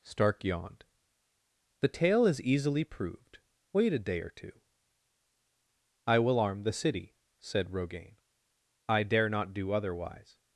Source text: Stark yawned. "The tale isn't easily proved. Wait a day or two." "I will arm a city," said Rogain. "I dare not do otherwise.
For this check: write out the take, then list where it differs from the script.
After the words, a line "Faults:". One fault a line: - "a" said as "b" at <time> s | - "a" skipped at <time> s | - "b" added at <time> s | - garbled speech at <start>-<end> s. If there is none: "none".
Stark yawned. "The tale is easily proved. Wait a day or two." "I will arm the city," said Rogain. "I dare not do otherwise.
Faults:
- "isn't" said as "is" at 2.2 s
- "a" said as "the" at 6.6 s